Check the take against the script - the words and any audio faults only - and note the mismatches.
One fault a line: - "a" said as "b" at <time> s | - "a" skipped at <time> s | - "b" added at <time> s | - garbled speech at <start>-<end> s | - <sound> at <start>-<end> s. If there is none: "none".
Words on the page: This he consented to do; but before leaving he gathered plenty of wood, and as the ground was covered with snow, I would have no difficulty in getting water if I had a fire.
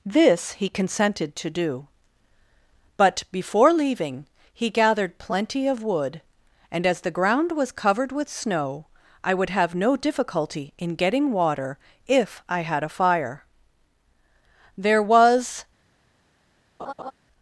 - "There was" added at 14.8 s
- laugh at 16.8-17.1 s